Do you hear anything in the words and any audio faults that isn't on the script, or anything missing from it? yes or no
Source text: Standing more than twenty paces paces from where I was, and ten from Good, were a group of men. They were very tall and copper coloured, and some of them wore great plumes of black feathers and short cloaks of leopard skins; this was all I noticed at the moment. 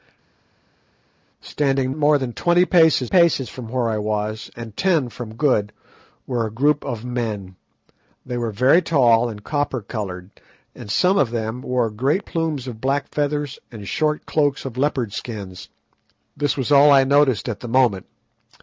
no